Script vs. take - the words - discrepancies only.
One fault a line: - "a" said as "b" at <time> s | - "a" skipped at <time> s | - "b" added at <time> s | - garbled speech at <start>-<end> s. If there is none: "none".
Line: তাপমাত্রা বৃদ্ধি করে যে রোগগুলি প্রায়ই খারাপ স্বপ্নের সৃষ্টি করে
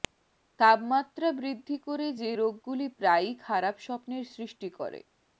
none